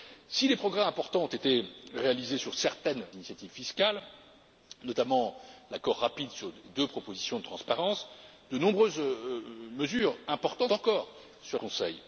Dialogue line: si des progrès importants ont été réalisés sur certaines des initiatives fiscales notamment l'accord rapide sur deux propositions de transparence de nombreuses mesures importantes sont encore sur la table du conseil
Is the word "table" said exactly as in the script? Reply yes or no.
no